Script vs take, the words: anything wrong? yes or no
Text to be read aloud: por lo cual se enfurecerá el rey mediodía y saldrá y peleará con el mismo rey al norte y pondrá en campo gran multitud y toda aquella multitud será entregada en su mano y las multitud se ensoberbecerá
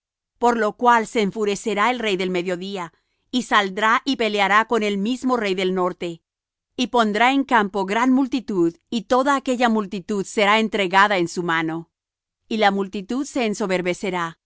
yes